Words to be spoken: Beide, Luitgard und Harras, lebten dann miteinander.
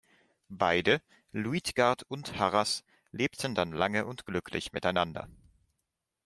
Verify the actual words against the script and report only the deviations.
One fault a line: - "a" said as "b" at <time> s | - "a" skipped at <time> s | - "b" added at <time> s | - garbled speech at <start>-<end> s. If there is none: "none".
- "lange und glücklich" added at 3.7 s